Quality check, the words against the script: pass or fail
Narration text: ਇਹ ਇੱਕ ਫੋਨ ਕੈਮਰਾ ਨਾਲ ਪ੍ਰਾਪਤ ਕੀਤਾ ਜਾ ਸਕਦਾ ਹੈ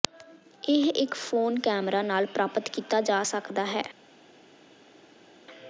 pass